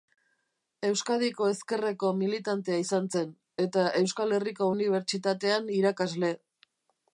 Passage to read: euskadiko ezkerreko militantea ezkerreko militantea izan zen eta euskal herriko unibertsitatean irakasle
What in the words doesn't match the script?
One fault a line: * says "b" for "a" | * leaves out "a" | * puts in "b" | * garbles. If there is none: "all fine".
* leaves out "ezkerreko militantea"